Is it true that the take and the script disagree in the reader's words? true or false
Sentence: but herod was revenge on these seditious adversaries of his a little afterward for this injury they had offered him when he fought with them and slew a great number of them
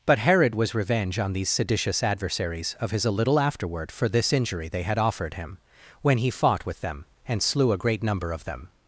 false